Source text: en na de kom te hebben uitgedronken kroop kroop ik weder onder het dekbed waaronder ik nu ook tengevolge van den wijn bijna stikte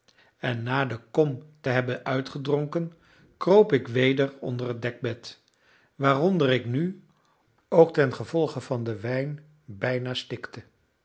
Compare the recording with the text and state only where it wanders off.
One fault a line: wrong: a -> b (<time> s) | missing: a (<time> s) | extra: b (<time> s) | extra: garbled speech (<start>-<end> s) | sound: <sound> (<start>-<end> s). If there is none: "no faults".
missing: kroop (3.7 s)